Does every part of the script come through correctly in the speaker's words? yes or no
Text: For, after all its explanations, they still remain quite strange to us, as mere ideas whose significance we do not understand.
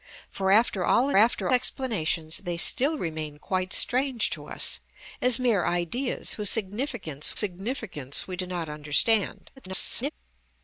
no